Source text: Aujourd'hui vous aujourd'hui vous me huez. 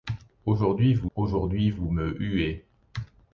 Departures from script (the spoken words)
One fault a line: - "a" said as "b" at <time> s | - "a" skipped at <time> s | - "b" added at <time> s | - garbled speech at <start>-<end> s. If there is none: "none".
none